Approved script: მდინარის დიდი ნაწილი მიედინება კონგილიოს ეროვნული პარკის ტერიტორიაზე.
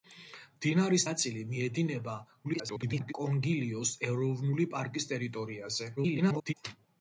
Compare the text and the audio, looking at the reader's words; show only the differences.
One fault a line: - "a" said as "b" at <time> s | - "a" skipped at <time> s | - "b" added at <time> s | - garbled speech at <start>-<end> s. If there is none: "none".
- "დიდი" skipped at 1.0 s
- garbled speech at 2.4-3.1 s
- garbled speech at 6.0-6.5 s